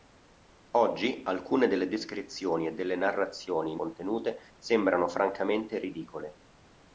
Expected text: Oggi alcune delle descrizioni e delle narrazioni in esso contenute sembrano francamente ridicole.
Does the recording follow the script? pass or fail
fail